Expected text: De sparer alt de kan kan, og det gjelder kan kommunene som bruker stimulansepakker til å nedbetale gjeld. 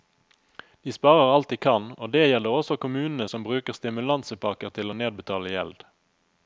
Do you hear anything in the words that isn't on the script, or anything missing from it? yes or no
yes